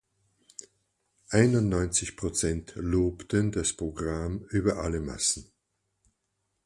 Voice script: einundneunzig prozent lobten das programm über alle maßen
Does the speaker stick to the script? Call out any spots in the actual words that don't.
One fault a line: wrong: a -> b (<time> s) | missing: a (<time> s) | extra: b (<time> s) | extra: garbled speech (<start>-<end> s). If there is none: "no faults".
no faults